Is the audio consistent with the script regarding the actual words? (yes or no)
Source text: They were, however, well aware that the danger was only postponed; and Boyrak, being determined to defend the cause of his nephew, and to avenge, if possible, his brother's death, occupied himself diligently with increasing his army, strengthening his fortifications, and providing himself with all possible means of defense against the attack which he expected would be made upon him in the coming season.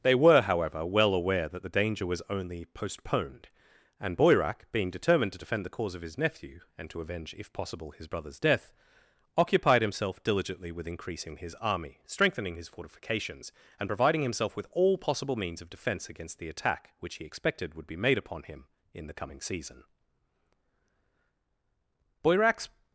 no